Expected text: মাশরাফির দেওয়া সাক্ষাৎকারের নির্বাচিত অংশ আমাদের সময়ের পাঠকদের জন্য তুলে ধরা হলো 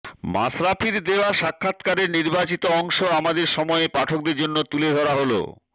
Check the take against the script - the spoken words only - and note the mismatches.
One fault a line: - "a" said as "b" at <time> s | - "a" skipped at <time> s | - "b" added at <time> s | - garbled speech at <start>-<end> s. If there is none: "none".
none